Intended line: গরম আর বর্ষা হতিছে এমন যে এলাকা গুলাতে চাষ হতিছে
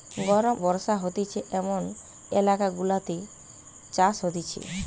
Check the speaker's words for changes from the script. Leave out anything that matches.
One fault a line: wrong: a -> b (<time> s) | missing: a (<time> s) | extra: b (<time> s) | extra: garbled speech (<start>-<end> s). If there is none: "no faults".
missing: আর (0.6 s)
missing: যে (1.8 s)